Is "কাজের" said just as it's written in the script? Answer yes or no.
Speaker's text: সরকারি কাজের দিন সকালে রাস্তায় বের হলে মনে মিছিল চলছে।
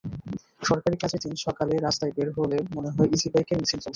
yes